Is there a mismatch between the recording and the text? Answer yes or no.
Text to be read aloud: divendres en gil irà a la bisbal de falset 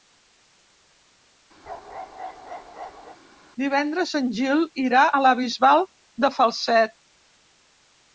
no